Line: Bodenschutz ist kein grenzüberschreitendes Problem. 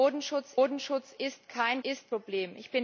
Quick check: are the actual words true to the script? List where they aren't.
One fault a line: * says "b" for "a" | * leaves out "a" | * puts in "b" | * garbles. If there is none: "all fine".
* puts in "bodenschutz"
* says "ist" for "grenzüberschreitendes"